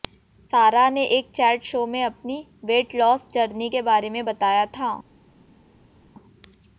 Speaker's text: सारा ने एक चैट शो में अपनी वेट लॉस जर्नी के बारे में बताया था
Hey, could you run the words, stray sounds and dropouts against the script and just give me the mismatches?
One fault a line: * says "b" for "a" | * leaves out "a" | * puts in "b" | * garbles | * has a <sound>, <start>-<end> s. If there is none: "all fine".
all fine